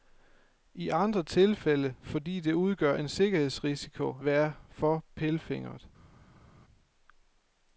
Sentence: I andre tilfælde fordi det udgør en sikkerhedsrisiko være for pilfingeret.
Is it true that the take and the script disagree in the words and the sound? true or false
false